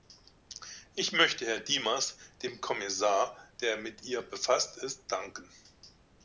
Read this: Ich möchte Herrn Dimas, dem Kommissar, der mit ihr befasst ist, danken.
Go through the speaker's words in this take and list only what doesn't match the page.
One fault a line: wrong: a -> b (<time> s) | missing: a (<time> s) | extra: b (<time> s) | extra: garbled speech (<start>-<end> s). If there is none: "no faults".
no faults